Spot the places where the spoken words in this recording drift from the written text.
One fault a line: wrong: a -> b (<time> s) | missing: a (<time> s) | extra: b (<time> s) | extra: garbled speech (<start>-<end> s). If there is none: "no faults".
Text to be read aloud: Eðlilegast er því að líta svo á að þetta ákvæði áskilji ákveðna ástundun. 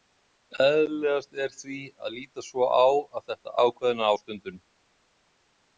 missing: ákvæði áskilji (3.5 s)